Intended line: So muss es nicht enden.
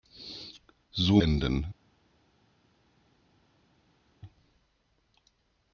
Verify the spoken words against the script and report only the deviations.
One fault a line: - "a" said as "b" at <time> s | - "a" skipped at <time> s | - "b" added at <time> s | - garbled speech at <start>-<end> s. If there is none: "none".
- "muss es nicht" skipped at 1.2 s